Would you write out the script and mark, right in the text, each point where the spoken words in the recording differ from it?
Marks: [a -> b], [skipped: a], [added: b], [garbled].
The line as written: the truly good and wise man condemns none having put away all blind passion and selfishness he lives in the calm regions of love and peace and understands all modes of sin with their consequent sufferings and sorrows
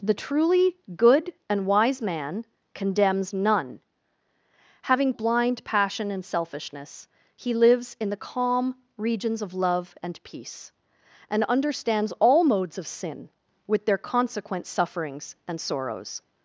the truly good and wise man condemns none having [skipped: put away all] blind passion and selfishness he lives in the calm regions of love and peace and understands all modes of sin with their consequent sufferings and sorrows